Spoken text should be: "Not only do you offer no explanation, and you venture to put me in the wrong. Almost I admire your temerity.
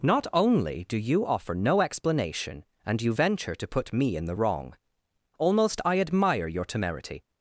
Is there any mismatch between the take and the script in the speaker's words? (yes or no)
no